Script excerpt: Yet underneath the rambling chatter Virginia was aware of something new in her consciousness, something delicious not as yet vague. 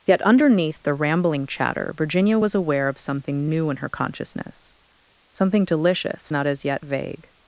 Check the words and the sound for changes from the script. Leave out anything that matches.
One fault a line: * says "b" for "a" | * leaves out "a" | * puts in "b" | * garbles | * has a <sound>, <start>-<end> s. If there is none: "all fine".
all fine